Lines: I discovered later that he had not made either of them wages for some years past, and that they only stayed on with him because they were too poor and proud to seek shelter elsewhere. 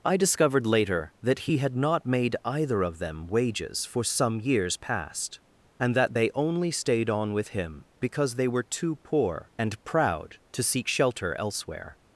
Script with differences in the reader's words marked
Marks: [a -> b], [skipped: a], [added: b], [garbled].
I discovered later that he had not made either of them wages for some years past, and that they only stayed on with him because they were too poor and proud to seek shelter elsewhere.